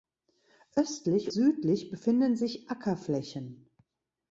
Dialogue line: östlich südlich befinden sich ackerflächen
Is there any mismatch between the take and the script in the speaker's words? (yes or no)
no